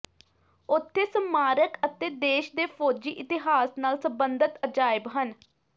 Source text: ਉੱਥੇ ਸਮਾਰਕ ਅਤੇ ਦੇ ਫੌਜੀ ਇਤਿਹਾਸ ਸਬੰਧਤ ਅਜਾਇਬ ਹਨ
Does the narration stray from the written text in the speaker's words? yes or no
yes